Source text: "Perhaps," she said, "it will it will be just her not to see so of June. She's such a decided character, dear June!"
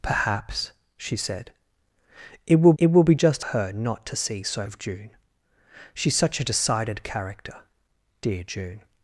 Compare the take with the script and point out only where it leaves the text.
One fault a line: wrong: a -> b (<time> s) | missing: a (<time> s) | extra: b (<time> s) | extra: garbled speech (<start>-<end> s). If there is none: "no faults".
no faults